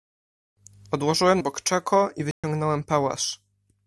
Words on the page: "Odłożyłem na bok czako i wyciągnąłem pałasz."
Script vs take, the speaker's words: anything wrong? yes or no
yes